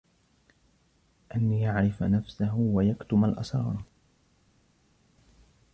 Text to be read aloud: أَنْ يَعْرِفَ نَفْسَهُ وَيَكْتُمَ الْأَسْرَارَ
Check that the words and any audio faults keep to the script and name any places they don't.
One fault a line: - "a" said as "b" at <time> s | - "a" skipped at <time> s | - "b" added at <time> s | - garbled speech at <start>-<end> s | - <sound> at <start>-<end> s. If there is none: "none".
none